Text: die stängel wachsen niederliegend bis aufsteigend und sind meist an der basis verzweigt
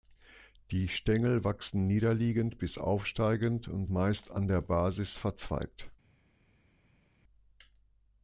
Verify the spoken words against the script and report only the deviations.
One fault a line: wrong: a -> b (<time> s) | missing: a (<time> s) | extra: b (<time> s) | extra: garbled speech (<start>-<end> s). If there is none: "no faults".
missing: sind (3.9 s)